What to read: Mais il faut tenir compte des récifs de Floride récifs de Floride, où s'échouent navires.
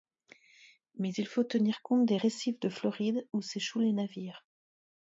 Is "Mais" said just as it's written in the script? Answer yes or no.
yes